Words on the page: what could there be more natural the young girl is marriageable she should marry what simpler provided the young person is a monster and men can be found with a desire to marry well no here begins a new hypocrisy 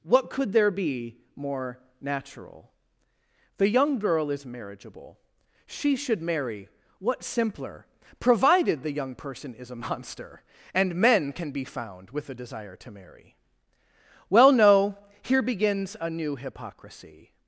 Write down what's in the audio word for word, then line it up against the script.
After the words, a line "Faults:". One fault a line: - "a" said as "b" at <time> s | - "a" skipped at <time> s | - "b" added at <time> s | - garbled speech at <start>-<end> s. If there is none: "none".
what could there be more natural the young girl is marriageable she should marry what simpler provided the young person is a monster and men can be found with a desire to marry well no here begins a new hypocrisy
Faults:
none